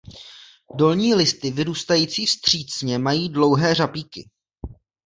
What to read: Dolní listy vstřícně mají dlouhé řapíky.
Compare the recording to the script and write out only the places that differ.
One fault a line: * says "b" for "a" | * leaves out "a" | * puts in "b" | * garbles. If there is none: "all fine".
* puts in "vyrůstající"